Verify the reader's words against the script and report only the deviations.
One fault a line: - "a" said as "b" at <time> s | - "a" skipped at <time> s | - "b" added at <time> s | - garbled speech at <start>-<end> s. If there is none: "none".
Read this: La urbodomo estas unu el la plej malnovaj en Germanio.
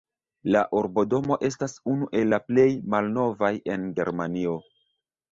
none